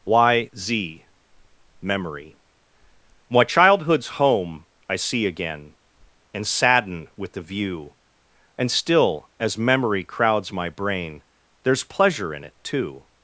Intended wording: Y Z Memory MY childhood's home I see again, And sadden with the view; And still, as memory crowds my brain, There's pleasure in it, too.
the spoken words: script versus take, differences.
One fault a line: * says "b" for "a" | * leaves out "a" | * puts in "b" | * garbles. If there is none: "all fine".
all fine